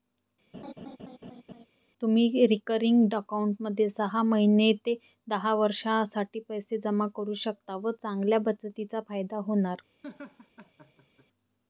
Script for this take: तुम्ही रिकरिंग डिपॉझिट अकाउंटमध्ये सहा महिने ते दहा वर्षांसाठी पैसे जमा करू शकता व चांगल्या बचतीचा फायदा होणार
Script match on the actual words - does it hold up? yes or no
no